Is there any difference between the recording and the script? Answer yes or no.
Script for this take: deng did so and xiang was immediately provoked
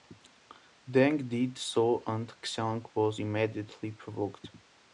no